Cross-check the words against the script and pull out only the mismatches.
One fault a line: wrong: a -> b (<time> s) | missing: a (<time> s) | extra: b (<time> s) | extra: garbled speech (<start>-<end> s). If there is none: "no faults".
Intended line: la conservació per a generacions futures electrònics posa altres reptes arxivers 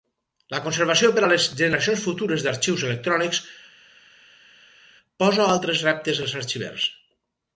extra: les (1.3 s)
extra: d'arxius (2.5 s)
extra: als (6.3 s)